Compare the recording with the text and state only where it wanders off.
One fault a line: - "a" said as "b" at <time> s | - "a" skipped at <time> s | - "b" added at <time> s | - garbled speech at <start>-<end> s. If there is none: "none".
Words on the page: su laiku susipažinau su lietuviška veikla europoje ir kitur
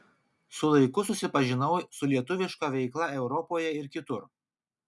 none